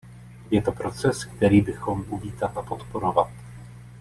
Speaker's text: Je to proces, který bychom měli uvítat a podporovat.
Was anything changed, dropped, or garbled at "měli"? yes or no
yes